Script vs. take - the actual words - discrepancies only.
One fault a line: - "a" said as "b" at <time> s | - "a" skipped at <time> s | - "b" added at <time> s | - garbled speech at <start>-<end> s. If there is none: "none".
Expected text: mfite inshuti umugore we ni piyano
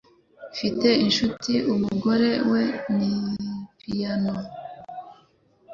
none